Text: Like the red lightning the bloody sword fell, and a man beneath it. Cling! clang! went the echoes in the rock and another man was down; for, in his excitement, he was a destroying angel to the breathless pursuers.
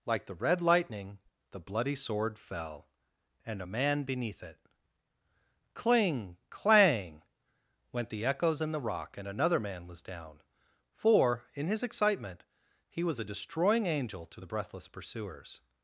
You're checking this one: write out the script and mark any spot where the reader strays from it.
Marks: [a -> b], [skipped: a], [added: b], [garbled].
Like the red lightning the bloody sword fell, and a man beneath it. Cling! clang! went the echoes in the rock and another man was down; for, in his excitement, he was a destroying angel to the breathless pursuers.